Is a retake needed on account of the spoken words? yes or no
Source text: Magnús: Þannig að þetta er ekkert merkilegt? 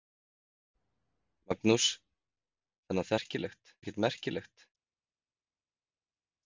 yes